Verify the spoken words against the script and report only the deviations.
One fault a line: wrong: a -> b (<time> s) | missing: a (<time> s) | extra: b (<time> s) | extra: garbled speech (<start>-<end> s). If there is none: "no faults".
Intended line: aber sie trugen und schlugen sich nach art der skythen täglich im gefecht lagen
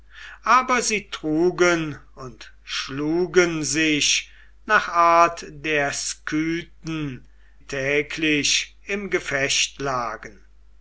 no faults